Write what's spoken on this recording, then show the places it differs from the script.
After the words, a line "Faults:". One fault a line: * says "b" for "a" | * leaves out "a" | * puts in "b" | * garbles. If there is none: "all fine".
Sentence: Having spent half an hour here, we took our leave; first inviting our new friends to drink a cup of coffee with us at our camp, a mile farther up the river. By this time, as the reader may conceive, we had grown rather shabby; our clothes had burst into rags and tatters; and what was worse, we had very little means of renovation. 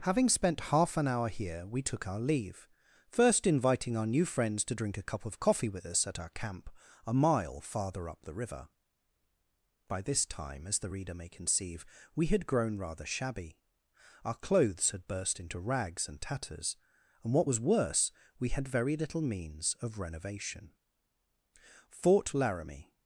Having spent half an hour here, we took our leave; first inviting our new friends to drink a cup of coffee with us at our camp, a mile farther up the river. By this time, as the reader may conceive, we had grown rather shabby; our clothes had burst into rags and tatters; and what was worse, we had very little means of renovation. Fort Laramie
Faults:
* puts in "Fort Laramie"